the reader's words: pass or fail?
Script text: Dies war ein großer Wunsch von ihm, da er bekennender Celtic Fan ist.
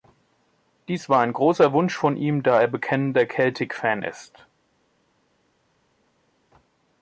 pass